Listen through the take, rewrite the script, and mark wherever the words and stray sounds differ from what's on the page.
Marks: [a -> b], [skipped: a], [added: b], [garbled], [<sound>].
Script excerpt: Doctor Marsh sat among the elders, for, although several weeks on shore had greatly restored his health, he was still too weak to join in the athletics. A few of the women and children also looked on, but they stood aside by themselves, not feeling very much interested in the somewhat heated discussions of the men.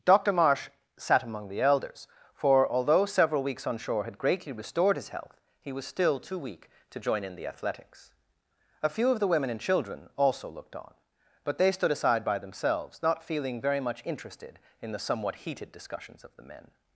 Doctor Marsh sat among the elders, for, although several weeks on shore had greatly restored his health, he was still too weak to join in the athletics. A few of the women and children also looked on, but they stood aside by themselves, not feeling very much interested in the somewhat heated discussions of the men.